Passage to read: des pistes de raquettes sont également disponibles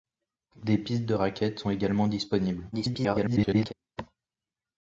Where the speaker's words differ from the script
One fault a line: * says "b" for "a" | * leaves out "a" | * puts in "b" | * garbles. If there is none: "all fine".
* garbles